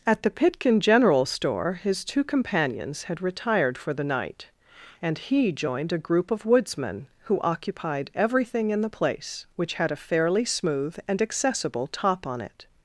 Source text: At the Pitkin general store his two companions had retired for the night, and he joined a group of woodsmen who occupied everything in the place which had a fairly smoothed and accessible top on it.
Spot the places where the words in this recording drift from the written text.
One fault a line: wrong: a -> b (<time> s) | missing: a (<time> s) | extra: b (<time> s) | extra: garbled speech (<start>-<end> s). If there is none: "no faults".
wrong: smoothed -> smooth (10.4 s)